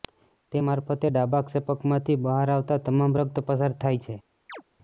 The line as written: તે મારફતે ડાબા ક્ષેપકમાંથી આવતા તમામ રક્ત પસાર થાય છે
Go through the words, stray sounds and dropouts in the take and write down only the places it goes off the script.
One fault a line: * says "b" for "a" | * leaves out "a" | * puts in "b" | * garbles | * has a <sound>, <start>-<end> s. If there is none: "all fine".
* puts in "બહાર"
* has a chirp, 4.5-4.6 s